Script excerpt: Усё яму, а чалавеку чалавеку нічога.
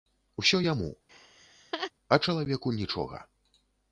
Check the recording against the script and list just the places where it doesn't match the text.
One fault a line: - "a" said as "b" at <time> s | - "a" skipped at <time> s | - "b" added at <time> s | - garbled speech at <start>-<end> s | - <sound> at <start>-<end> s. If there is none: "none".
- laugh at 1.1-1.9 s
- "чалавеку" skipped at 2.8 s